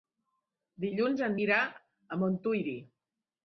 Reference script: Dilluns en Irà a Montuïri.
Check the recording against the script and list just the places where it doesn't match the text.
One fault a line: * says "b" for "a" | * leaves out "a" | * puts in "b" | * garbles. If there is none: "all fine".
all fine